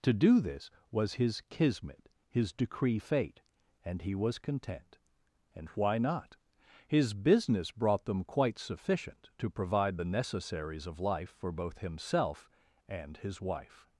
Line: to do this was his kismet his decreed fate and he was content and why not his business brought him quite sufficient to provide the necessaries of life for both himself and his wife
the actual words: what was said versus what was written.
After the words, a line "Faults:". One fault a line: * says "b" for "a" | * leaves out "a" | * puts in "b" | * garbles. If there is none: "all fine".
to do this was his kismet his decree fate and he was content and why not his business brought them quite sufficient to provide the necessaries of life for both himself and his wife
Faults:
* says "decree" for "decreed"
* says "them" for "him"